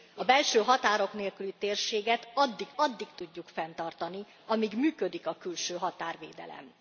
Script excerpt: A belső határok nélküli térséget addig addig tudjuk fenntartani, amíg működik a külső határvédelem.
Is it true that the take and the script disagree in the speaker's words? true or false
false